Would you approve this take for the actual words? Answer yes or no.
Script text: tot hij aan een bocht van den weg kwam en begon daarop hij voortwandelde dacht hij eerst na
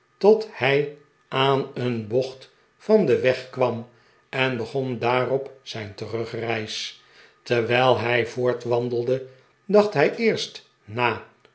no